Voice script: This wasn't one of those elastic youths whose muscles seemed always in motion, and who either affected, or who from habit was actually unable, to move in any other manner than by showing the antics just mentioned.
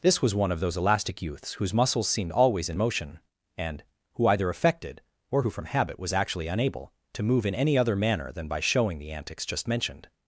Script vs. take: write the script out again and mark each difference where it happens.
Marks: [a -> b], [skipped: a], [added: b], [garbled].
This [wasn't -> was] one of those elastic youths whose muscles seemed always in motion, and who either affected, or who from habit was actually unable, to move in any other manner than by showing the antics just mentioned.